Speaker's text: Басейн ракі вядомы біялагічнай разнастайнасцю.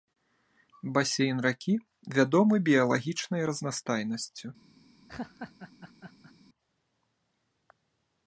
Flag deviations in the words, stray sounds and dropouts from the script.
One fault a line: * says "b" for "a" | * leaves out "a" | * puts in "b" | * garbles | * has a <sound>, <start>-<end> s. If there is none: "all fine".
* has a laugh, 5.1-6.3 s